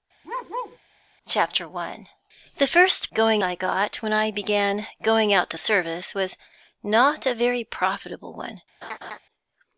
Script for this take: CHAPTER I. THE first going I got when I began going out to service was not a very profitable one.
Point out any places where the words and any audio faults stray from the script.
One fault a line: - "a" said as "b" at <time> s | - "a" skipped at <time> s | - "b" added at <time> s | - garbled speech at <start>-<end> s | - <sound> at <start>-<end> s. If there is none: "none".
- bark at 0.2-0.8 s
- laugh at 8.8-9.2 s